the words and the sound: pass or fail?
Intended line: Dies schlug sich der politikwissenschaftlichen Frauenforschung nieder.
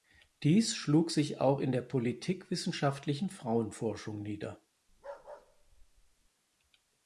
fail